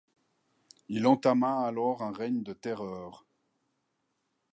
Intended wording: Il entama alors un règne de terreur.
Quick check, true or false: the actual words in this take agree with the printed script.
true